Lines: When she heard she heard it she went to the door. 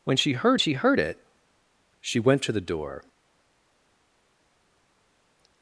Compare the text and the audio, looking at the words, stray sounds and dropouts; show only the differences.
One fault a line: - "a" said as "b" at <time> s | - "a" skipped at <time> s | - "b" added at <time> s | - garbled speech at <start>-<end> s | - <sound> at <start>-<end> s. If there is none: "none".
none